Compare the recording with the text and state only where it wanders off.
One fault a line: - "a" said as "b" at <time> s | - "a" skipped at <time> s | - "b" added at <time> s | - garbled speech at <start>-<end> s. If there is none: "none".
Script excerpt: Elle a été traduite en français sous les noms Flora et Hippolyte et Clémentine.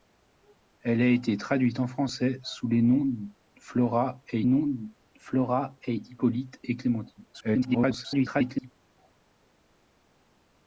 - "noms Flora et" added at 4.4 s
- garbled speech at 7.3-8.7 s